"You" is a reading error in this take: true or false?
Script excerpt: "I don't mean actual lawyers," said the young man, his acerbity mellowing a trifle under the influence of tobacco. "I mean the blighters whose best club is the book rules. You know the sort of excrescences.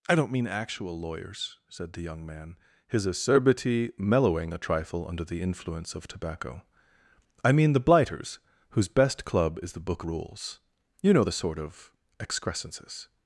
false